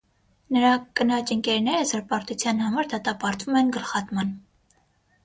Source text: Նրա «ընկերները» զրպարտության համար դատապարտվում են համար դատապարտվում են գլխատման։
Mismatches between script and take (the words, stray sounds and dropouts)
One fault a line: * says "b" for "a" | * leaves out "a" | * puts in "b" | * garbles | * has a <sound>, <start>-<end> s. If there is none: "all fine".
* puts in "կնոջ"
* leaves out "համար դատապարտվում են"